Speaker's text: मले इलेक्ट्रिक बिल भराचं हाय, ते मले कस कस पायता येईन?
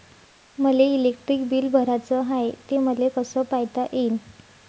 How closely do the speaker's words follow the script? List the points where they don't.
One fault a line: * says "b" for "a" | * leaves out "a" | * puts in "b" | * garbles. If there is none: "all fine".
* leaves out "कस"